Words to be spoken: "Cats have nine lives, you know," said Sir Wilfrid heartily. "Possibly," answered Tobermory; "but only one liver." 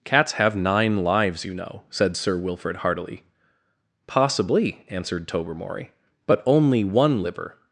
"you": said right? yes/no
yes